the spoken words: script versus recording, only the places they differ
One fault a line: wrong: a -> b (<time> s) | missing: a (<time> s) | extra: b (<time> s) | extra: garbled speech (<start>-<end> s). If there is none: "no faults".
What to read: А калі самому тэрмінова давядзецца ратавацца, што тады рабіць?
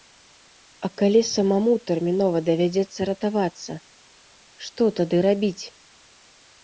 no faults